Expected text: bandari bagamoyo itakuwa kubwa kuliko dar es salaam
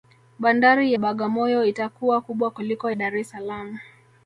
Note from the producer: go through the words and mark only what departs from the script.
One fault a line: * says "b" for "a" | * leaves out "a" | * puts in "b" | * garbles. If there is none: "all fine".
all fine